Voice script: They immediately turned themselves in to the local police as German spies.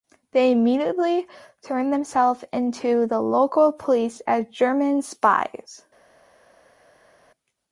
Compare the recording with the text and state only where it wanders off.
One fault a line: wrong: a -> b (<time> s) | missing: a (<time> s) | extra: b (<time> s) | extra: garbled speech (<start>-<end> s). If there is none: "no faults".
no faults